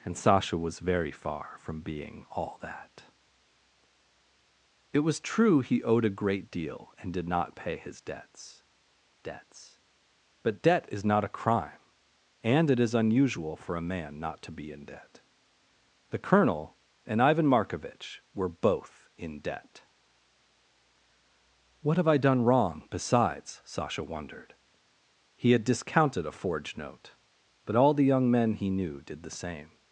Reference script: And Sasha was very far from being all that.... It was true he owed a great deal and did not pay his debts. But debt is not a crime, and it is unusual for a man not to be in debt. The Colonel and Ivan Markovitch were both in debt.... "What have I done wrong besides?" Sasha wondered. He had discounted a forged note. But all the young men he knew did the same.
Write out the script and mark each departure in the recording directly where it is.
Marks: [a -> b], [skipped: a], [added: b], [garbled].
And Sasha was very far from being all that.... It was true he owed a great deal and did not pay his debts. [added: debts] But debt is not a crime, and it is unusual for a man not to be in debt. The Colonel and Ivan Markovitch were both in debt.... "What have I done wrong besides?" Sasha wondered. He had discounted a forged note. But all the young men he knew did the same.